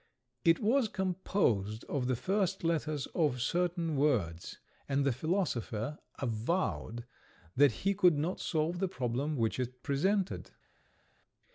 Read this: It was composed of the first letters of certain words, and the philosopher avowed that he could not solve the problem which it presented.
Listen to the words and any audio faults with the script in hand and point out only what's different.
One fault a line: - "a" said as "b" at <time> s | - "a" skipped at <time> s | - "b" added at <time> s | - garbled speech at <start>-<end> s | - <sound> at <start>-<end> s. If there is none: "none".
none